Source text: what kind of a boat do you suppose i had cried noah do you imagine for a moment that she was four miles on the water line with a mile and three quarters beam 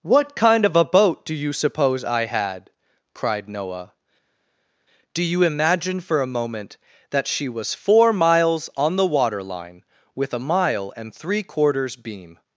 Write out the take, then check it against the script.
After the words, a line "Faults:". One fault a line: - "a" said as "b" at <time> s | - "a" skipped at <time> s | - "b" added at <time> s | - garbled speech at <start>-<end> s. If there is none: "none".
what kind of a boat do you suppose i had cried noah do you imagine for a moment that she was four miles on the water line with a mile and three quarters beam
Faults:
none